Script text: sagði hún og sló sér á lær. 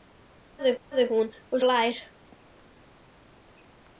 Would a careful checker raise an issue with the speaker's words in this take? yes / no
yes